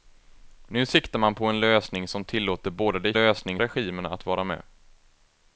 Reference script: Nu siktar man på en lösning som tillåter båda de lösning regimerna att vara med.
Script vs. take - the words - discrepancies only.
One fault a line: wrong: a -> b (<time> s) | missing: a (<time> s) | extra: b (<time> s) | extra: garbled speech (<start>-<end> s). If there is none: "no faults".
no faults